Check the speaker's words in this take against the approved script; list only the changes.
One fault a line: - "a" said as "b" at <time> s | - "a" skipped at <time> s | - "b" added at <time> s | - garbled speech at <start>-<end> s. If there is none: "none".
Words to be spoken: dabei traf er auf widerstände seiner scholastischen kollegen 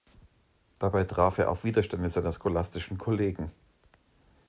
none